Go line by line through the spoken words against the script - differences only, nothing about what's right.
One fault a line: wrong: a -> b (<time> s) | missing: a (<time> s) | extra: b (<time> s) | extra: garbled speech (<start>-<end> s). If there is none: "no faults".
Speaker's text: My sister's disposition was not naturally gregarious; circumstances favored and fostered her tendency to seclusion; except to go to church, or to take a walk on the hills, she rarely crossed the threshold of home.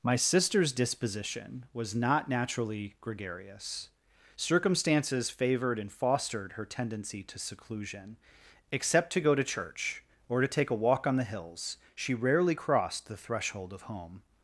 no faults